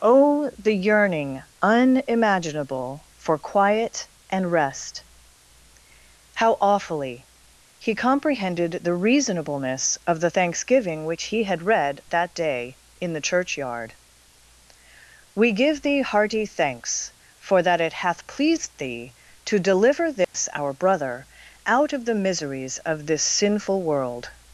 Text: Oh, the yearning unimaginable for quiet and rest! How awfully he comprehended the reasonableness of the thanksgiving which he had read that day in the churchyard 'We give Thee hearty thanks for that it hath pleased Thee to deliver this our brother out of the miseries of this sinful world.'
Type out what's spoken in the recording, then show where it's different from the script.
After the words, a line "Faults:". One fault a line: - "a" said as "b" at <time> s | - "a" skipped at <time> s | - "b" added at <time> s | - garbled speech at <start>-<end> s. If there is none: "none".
Oh, the yearning unimaginable for quiet and rest! How awfully he comprehended the reasonableness of the thanksgiving which he had read that day in the churchyard 'We give Thee hearty thanks for that it hath pleased Thee to deliver this our brother out of the miseries of this sinful world.'
Faults:
none